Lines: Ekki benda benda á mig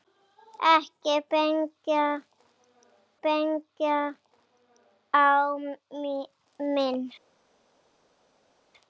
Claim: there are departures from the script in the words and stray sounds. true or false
false